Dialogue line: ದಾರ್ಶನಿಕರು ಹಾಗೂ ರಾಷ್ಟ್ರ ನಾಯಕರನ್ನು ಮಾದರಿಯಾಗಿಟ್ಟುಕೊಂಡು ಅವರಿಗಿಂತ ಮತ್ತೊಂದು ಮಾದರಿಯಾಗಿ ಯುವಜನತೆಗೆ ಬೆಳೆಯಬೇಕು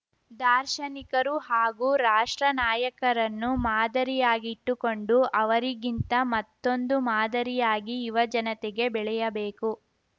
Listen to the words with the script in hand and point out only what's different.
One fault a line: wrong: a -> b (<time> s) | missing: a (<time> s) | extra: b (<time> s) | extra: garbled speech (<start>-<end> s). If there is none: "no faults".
no faults